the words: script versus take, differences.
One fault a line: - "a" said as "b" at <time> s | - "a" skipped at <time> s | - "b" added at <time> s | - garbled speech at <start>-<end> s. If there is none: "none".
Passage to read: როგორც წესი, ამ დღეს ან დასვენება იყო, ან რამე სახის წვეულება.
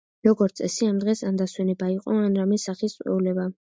none